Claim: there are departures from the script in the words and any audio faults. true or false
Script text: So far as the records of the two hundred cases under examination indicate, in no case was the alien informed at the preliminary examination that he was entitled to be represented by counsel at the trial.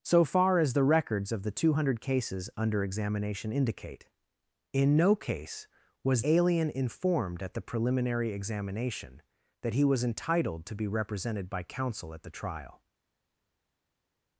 true